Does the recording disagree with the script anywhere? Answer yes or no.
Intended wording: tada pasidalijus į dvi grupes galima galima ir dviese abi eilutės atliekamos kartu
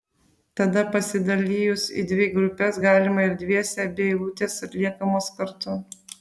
yes